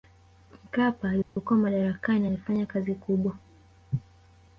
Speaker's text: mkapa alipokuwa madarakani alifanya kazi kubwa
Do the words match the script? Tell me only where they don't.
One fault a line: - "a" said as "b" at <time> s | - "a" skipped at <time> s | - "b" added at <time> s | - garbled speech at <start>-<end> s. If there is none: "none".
none